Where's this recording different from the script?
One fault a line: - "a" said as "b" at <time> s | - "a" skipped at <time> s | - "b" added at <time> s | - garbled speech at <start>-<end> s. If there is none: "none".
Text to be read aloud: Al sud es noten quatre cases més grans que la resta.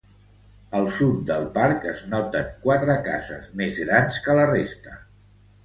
- "del parc" added at 1.3 s